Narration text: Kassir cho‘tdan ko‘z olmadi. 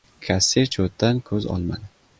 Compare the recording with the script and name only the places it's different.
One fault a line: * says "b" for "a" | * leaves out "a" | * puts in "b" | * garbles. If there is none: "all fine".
all fine